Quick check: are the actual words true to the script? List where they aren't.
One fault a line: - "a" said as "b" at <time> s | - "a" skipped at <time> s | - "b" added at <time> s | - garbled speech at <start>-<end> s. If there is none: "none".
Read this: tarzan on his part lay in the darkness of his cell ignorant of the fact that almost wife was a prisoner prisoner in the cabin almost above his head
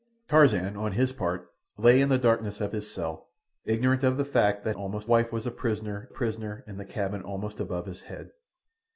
none